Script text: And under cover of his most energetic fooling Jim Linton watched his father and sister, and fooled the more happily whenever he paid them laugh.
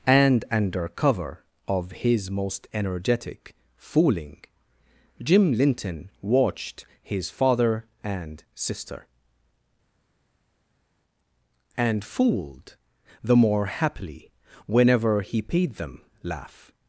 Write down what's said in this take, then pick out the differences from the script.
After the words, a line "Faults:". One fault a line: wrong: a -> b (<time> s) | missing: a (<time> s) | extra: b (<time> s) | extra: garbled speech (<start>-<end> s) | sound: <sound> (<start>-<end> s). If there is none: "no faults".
And under cover of his most energetic fooling Jim Linton watched his father and sister, and fooled the more happily whenever he paid them laugh.
Faults:
no faults